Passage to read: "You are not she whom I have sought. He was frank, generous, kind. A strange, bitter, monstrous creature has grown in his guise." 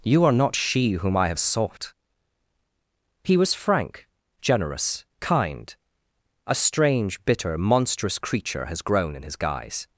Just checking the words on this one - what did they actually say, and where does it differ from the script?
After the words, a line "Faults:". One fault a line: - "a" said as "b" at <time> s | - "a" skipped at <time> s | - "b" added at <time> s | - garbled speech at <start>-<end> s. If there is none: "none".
"You are not she whom I have sought. He was frank, generous, kind. A strange, bitter, monstrous creature has grown in his guise."
Faults:
none